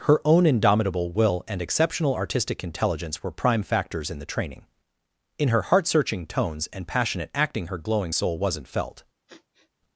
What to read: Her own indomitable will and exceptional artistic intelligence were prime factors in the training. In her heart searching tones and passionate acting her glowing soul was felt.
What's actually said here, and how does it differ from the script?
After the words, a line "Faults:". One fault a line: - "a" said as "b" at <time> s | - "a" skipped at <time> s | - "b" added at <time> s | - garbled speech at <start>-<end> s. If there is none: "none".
Her own indomitable will and exceptional artistic intelligence were prime factors in the training. In her heart searching tones and passionate acting her glowing soul wasn't felt.
Faults:
- "was" said as "wasn't" at 8.4 s